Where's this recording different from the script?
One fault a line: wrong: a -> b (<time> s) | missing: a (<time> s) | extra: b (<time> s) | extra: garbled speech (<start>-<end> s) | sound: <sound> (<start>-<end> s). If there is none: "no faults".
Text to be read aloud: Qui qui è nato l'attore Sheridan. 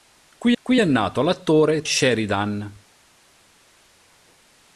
no faults